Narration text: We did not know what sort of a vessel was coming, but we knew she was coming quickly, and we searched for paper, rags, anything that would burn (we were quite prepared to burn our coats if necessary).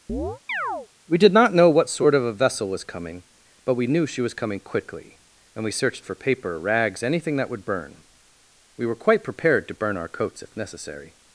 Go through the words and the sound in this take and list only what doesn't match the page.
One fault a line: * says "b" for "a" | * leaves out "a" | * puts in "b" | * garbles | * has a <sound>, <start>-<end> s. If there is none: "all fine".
* has a chirp, 0.1-0.9 s